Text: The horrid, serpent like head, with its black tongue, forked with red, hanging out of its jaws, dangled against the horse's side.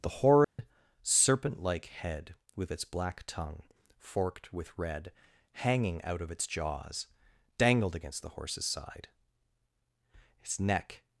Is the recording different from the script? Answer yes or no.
yes